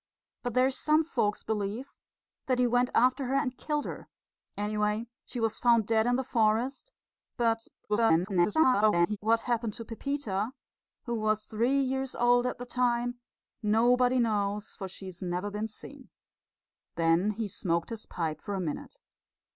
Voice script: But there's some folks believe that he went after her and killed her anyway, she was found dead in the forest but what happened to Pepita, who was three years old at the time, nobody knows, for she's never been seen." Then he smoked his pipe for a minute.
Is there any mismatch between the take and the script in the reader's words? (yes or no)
yes